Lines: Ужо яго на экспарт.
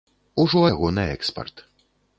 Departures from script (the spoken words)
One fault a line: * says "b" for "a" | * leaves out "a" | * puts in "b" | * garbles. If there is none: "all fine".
all fine